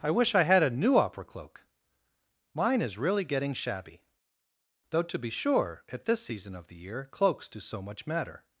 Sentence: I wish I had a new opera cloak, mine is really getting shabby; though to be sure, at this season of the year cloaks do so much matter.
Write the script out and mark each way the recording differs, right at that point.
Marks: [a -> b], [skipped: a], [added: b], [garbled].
I wish I had a new opera cloak, mine is really getting shabby; though to be sure, at this season of the year cloaks do so much matter.